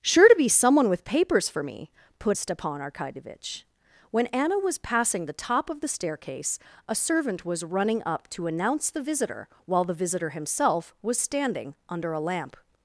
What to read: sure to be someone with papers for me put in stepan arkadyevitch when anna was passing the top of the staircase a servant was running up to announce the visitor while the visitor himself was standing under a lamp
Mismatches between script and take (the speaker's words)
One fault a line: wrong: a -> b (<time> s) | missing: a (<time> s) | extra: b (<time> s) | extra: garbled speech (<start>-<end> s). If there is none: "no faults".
missing: in (2.4 s)